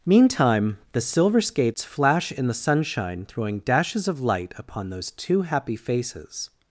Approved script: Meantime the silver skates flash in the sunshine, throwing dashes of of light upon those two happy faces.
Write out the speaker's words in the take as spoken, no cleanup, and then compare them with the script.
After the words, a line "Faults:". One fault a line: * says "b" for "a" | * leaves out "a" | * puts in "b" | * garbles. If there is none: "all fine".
Meantime the silver skates flash in the sunshine, throwing dashes of light upon those two happy faces.
Faults:
* leaves out "of"